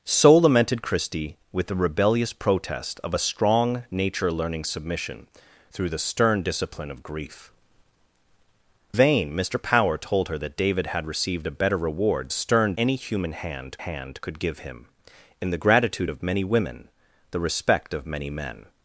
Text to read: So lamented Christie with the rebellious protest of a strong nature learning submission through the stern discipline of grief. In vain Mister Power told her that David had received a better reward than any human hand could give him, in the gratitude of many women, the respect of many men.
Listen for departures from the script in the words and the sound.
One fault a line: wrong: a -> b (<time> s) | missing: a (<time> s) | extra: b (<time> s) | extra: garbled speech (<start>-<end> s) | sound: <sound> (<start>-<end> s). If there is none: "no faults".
missing: In (7.5 s)
wrong: than -> stern (12.3 s)
extra: hand (13.8 s)